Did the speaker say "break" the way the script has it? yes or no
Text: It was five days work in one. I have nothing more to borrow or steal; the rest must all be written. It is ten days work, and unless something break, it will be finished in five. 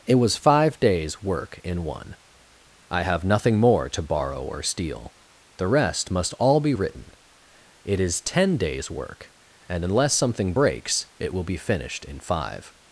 no